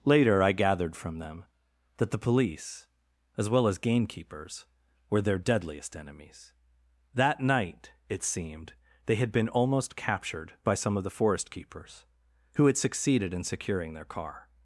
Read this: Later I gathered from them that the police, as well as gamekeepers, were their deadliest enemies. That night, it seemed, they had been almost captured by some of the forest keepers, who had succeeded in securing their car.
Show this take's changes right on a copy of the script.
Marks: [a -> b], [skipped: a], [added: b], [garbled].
Later I gathered from them that the police, as well as gamekeepers, were their deadliest enemies. That night, it seemed, they had been almost captured by some of the forest keepers, who had succeeded in securing their car.